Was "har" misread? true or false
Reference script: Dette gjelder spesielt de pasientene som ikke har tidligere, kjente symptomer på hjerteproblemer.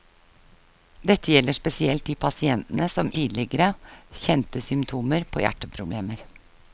true